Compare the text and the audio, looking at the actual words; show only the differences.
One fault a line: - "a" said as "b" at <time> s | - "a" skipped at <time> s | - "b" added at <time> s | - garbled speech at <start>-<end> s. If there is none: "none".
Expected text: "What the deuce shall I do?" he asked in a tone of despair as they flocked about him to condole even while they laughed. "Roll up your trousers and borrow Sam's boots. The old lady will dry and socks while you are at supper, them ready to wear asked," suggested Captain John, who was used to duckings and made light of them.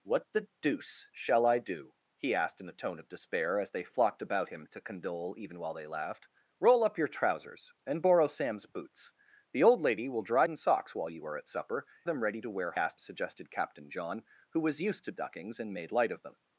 none